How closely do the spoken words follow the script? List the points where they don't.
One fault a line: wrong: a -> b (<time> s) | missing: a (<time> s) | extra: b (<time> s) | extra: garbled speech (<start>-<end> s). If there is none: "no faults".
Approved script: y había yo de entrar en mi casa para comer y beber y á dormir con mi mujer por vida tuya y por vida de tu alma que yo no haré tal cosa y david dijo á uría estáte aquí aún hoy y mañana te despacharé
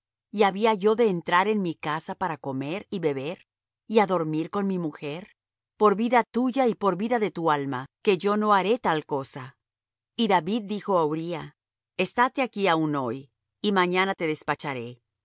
no faults